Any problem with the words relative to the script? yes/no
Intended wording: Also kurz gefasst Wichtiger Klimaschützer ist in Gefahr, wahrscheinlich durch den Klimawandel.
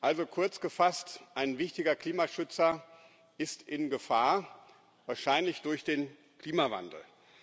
yes